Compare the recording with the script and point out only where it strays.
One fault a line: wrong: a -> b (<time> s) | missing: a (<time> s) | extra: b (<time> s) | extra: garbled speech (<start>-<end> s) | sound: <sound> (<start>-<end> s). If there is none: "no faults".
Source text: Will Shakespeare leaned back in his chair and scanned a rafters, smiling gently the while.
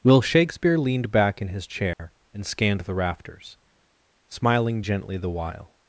sound: dropout (1.9-2.0 s)
wrong: a -> the (2.8 s)